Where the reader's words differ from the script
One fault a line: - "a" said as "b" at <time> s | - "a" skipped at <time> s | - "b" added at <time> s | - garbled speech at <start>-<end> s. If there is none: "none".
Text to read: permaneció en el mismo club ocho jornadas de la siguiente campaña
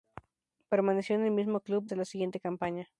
- "ocho jornadas" skipped at 1.9 s